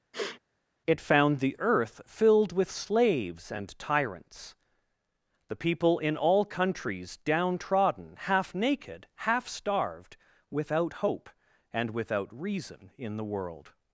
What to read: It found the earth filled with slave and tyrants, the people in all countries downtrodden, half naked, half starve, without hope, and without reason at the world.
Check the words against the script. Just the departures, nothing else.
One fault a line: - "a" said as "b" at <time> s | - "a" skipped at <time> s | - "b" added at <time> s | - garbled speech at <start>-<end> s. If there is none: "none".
- "slave" said as "slaves" at 2.7 s
- "starve" said as "starved" at 9.5 s
- "at" said as "in" at 13.0 s